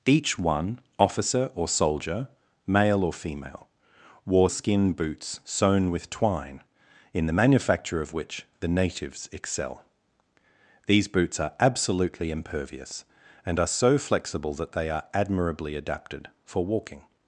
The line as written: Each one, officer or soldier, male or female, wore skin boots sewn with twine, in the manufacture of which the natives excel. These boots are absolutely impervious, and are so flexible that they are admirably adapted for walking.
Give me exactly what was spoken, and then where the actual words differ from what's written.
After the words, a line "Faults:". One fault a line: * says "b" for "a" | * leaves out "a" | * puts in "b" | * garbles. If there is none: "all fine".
Each one, officer or soldier, male or female, wore skin boots sewn with twine, in the manufacture of which the natives excel. These boots are absolutely impervious, and are so flexible that they are admirably adapted for walking.
Faults:
all fine